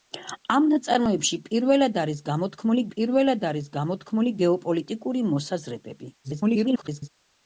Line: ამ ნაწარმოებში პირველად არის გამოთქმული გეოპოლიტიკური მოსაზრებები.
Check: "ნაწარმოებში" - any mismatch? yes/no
no